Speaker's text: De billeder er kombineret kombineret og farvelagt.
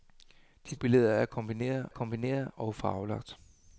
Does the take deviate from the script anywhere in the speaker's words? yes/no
no